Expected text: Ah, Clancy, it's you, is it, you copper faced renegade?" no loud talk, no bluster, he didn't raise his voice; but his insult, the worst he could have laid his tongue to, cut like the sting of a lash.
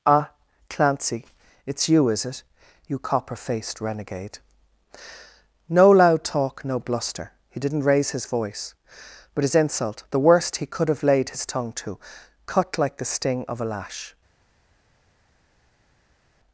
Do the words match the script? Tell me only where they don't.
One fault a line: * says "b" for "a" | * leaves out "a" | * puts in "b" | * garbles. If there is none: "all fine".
all fine